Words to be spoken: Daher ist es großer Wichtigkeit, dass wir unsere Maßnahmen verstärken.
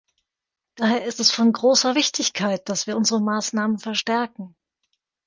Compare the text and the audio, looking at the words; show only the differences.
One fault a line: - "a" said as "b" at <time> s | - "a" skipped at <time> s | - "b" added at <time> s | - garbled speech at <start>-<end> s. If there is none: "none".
- "von" added at 1.3 s